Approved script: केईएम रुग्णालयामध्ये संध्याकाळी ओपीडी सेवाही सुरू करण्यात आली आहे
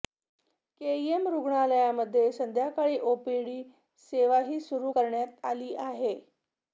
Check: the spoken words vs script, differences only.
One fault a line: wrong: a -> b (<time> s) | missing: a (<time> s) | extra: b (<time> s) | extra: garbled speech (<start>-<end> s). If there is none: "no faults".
no faults